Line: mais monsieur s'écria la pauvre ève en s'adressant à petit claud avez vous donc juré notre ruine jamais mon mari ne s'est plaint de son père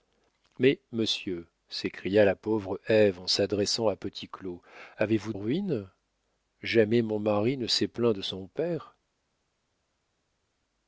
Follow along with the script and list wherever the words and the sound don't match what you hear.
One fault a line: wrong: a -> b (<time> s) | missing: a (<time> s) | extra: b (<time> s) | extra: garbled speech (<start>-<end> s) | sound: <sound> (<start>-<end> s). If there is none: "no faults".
missing: donc juré notre (5.3 s)